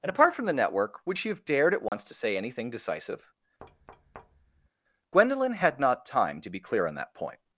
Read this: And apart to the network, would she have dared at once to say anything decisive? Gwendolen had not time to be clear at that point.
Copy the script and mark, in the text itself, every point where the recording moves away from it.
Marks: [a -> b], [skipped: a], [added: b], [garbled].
And apart [to -> from] the network, would she have dared at once to say anything decisive? Gwendolen had not time to be clear [at -> on] that point.